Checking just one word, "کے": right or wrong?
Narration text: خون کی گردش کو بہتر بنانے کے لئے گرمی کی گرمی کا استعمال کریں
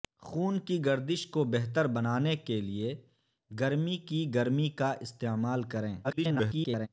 right